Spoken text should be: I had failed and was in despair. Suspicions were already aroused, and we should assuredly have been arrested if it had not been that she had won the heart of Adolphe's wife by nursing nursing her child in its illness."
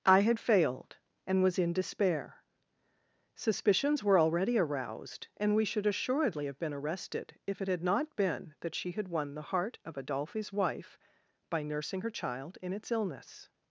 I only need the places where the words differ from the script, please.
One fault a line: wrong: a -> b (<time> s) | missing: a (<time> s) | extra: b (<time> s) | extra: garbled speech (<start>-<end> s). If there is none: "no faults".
missing: nursing (12.0 s)